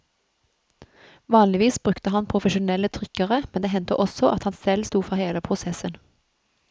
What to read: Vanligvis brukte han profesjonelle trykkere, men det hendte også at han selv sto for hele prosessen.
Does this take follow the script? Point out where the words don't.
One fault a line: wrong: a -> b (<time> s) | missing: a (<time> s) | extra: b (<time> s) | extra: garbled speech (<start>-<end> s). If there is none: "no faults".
no faults